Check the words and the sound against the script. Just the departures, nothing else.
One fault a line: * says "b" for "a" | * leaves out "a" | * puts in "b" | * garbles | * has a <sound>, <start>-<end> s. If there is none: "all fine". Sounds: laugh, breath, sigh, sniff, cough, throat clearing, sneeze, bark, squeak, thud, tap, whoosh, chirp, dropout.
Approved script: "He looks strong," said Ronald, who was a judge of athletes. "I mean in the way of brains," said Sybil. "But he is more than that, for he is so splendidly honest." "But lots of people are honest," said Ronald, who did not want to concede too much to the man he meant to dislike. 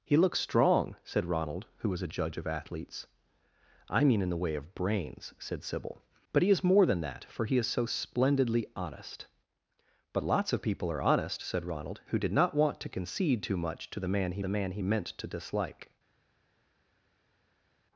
* puts in "the man he"